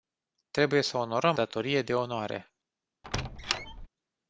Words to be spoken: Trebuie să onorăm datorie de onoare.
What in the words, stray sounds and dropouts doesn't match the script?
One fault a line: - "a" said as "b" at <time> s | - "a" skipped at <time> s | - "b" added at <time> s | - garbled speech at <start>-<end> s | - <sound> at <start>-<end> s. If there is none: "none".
- squeak at 3.0-3.9 s